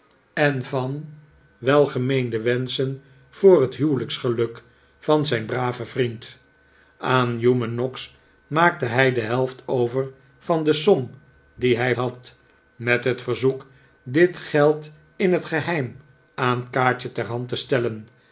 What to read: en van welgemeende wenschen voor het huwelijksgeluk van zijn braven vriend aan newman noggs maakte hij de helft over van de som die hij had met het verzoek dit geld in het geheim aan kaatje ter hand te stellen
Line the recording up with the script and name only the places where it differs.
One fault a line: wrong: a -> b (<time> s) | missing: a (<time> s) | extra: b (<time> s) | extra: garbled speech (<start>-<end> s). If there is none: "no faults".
no faults